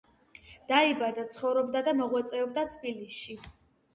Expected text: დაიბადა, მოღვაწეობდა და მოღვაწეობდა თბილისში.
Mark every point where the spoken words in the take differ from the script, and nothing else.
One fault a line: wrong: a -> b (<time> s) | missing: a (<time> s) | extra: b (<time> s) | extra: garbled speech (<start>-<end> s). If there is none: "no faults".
wrong: მოღვაწეობდა -> ცხოვრობდა (1.4 s)